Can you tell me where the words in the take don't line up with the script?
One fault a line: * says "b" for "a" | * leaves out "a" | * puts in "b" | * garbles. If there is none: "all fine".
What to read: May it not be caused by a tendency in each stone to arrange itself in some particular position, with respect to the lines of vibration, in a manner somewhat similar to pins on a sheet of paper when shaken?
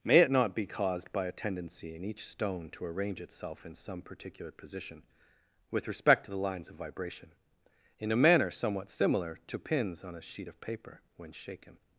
all fine